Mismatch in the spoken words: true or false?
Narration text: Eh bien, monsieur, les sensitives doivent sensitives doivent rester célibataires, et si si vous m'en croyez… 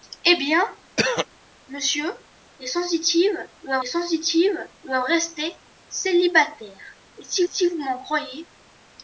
false